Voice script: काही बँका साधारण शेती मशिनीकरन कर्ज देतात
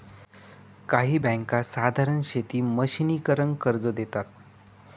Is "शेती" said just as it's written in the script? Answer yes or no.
yes